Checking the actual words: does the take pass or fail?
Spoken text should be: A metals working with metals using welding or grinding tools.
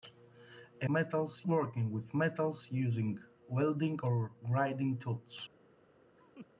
pass